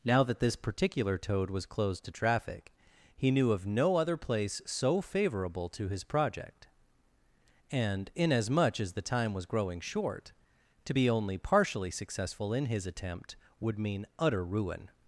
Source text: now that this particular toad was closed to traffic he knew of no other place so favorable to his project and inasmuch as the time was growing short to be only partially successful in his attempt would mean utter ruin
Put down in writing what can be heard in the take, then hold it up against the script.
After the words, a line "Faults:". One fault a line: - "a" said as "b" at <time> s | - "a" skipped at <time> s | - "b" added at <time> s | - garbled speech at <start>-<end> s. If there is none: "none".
now that this particular toad was closed to traffic he knew of no other place so favorable to his project and inasmuch as the time was growing short to be only partially successful in his attempt would mean utter ruin
Faults:
none